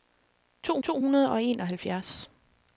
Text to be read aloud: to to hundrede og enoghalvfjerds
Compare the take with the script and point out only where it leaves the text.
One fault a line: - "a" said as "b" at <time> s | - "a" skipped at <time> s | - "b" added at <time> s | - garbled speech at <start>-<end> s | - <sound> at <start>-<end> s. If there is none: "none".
none